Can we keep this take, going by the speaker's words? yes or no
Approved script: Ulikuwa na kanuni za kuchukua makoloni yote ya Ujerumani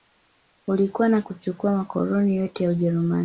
no